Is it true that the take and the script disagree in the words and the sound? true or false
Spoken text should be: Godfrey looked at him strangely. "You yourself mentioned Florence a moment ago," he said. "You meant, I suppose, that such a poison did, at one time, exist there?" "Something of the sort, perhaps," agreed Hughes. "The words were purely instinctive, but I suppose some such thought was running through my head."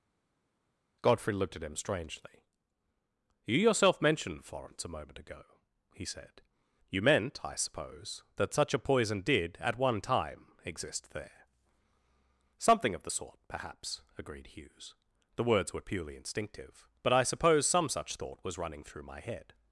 false